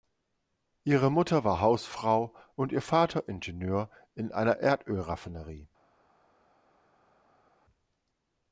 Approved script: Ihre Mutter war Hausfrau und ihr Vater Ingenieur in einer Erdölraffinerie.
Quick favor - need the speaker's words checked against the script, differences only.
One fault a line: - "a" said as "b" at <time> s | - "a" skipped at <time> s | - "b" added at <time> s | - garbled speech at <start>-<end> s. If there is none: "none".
none